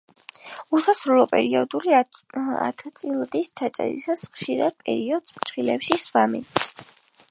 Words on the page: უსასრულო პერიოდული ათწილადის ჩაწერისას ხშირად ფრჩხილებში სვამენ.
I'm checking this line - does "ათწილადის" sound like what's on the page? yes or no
yes